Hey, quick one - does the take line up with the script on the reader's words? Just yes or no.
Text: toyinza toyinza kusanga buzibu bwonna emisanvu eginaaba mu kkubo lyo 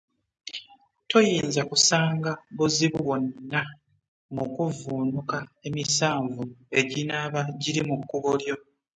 no